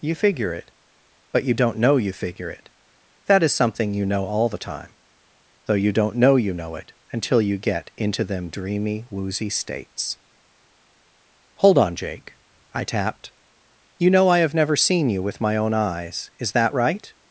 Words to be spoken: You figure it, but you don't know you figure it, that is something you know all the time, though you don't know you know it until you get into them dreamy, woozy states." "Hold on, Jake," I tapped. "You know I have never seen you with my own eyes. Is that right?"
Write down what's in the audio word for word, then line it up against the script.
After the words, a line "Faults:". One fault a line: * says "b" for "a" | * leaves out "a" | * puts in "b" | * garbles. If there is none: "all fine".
You figure it, but you don't know you figure it, that is something you know all the time, though you don't know you know it until you get into them dreamy, woozy states." "Hold on, Jake," I tapped. "You know I have never seen you with my own eyes. Is that right?"
Faults:
all fine